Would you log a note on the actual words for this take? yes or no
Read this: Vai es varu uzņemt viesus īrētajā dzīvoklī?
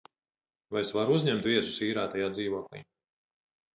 no